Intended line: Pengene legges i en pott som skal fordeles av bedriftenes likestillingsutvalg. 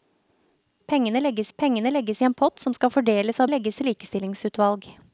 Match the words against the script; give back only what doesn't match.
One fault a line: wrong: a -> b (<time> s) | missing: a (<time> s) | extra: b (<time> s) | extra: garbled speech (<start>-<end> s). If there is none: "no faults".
extra: pengene legges (1.6 s)
wrong: bedriftenes -> legges (3.5 s)